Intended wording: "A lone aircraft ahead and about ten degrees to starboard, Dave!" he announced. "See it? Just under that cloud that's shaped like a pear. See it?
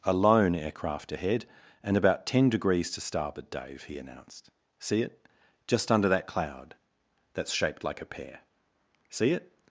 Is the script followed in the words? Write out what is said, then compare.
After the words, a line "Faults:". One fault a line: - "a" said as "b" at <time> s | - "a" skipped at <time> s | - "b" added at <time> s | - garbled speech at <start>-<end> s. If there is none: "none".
"A lone aircraft ahead and about ten degrees to starboard, Dave!" he announced. "See it? Just under that cloud that's shaped like a pear. See it?
Faults:
none